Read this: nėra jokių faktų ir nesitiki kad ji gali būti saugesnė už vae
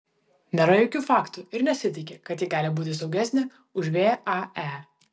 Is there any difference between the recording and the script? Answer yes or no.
no